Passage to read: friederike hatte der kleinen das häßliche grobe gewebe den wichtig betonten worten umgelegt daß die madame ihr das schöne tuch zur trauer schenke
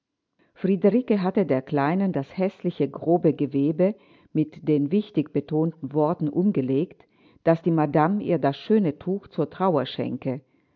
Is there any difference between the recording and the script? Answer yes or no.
yes